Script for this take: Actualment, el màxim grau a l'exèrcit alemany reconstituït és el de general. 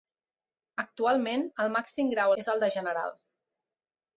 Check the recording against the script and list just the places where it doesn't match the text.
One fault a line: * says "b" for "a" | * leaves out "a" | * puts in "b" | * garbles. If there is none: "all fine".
* leaves out "l'exèrcit alemany reconstituït"